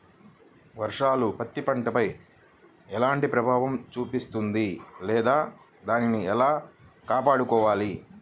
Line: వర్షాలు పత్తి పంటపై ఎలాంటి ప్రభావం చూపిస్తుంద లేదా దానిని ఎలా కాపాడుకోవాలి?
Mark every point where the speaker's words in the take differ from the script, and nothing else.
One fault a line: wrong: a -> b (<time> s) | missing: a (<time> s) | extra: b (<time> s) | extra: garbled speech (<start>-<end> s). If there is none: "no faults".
no faults